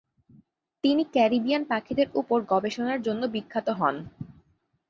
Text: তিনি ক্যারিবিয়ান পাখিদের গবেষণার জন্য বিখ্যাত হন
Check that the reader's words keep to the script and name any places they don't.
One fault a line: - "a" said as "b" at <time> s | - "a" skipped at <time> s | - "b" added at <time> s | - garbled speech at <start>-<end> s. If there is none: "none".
- "উপর" added at 2.1 s